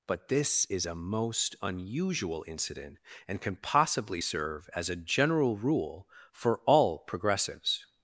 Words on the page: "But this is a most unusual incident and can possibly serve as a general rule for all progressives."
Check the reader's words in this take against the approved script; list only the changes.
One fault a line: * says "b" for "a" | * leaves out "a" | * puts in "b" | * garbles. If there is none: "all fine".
all fine